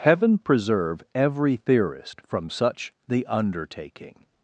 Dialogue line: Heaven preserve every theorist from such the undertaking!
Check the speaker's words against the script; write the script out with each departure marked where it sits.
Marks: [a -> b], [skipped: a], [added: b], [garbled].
Heaven preserve every theorist from such the undertaking!